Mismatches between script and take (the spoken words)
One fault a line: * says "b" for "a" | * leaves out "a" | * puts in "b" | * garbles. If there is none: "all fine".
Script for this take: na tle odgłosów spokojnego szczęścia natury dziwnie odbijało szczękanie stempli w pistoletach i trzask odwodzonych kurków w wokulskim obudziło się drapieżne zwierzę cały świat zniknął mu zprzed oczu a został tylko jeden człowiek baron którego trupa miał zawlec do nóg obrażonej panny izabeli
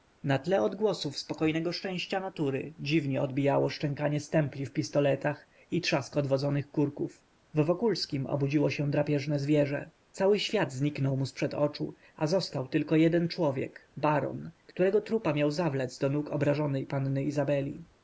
all fine